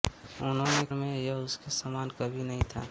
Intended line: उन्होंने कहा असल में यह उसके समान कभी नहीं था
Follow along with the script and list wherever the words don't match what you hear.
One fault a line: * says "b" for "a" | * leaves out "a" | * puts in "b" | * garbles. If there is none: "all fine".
* leaves out "कहा असल"